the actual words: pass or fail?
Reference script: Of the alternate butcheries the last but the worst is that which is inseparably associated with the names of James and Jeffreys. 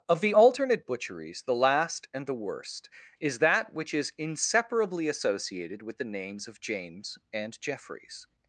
fail